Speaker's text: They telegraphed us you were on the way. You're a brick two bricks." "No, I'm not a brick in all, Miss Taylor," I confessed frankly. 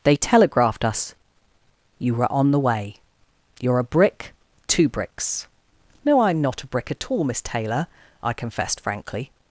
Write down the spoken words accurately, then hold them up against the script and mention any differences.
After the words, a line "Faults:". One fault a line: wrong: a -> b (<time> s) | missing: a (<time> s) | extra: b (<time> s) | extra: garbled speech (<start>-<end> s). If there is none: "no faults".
They telegraphed us you were on the way. You're a brick two bricks." "No, I'm not a brick at all, Miss Taylor," I confessed frankly.
Faults:
wrong: in -> at (6.9 s)